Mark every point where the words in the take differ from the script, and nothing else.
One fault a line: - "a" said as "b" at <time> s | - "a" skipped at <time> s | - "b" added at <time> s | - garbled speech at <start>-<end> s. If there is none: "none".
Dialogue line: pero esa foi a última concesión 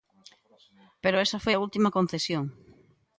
none